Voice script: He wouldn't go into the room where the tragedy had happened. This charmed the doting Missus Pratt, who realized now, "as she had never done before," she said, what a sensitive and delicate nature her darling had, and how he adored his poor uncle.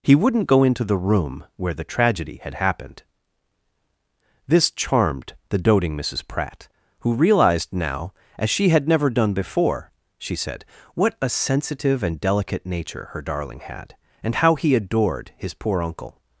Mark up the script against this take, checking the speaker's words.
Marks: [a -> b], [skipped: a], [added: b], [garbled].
He wouldn't go into the room where the tragedy had happened. This charmed the doting Missus Pratt, who realized now, "as she had never done before," she said, what a sensitive and delicate nature her darling had, and how he adored his poor uncle.